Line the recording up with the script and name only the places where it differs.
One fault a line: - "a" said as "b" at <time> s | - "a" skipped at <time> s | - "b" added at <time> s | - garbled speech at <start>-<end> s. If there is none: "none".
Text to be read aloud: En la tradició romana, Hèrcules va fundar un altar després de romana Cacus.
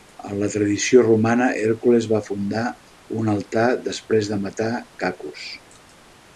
- "romana" said as "matar" at 4.5 s